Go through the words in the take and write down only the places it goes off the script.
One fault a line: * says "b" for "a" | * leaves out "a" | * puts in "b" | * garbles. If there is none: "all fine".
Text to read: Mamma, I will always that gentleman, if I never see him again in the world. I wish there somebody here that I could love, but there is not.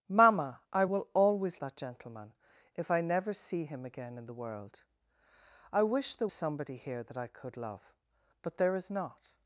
all fine